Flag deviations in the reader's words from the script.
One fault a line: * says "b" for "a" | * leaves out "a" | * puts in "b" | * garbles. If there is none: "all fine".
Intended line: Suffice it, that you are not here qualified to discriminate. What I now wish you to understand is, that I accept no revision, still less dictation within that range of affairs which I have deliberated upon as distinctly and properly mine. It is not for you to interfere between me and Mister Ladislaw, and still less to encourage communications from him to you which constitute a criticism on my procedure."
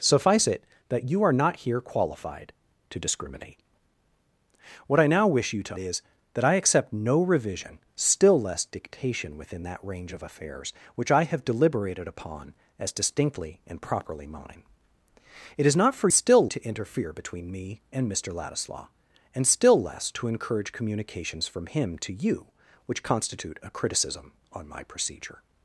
* leaves out "understand"
* says "still" for "you"